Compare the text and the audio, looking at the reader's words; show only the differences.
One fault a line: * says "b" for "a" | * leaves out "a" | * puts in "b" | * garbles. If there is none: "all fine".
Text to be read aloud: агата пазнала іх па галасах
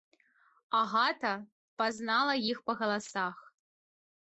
all fine